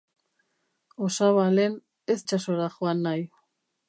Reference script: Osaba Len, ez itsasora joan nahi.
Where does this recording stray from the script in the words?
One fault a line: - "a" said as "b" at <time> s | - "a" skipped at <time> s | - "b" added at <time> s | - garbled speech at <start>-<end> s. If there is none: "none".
none